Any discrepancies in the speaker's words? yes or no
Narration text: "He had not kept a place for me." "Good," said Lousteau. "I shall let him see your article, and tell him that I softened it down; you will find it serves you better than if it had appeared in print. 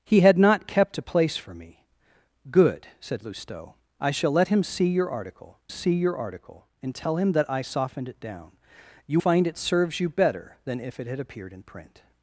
yes